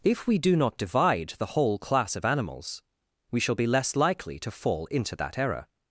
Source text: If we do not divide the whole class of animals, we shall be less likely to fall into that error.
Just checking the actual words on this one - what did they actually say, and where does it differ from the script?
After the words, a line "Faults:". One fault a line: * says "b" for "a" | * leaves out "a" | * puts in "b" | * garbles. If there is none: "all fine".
If we do not divide the whole class of animals, we shall be less likely to fall into that error.
Faults:
all fine